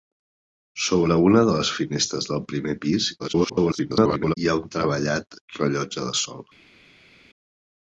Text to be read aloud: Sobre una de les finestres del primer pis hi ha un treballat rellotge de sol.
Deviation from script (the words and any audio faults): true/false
true